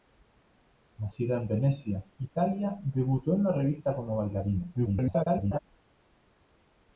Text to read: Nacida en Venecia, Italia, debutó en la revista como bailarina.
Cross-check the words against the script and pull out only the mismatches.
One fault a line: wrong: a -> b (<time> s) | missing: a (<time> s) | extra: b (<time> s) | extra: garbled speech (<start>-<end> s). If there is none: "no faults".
extra: garbled speech (4.7-5.6 s)